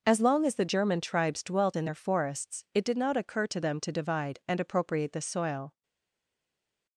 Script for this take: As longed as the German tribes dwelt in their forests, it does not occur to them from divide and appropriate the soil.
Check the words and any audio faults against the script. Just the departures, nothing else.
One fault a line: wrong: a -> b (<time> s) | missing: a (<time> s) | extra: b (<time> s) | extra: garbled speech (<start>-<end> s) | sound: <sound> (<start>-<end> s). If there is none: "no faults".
wrong: longed -> long (0.2 s)
wrong: does -> did (2.8 s)
wrong: from -> to (3.8 s)